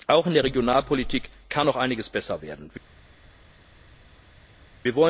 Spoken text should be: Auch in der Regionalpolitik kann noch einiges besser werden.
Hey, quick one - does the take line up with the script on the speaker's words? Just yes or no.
yes